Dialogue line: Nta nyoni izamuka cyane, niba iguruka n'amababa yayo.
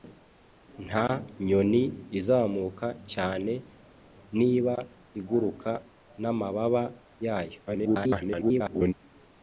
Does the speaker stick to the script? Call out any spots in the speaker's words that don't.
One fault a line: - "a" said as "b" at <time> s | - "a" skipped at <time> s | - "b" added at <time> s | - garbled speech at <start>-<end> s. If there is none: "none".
- garbled speech at 7.7-8.9 s